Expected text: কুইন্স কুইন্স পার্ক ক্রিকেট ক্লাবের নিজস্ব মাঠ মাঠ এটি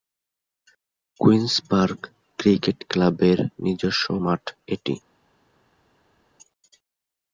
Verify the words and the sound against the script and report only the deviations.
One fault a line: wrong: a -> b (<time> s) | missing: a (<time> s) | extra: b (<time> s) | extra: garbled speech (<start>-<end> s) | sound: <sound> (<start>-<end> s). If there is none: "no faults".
missing: কুইন্স (1.5 s)
missing: মাঠ (4.4 s)